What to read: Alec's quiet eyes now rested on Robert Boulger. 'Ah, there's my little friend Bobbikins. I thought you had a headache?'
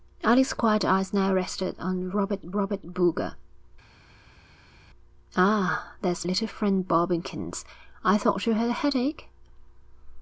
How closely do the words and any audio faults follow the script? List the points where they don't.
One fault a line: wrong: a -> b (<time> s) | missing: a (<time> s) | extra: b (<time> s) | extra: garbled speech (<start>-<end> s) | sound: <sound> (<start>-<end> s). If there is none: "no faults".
extra: Robert (2.5 s)
missing: my (6.3 s)